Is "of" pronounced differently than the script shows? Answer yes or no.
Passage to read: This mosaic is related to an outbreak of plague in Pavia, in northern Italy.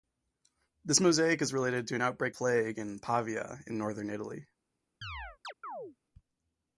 yes